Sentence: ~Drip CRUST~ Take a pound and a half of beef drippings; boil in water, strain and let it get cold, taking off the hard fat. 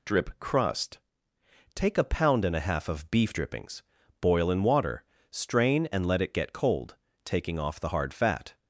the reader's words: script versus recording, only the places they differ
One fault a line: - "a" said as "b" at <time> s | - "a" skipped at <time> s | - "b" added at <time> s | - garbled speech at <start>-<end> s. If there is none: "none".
none